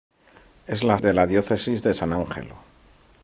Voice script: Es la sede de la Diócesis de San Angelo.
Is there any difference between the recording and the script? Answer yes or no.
yes